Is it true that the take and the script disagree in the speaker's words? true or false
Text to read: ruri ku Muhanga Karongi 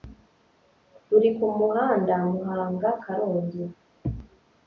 true